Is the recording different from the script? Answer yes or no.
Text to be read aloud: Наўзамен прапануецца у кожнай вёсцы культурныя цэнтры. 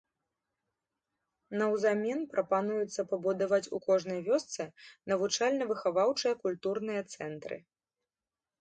yes